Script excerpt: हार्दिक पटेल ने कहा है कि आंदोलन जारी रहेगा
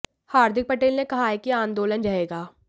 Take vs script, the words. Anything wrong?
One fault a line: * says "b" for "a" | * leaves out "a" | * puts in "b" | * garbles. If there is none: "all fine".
* leaves out "जारी"